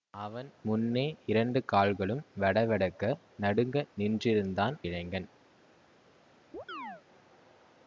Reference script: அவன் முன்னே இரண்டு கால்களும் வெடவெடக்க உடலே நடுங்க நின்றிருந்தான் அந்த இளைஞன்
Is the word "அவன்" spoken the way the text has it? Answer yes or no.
yes